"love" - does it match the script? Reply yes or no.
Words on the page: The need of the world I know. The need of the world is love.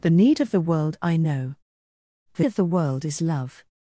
yes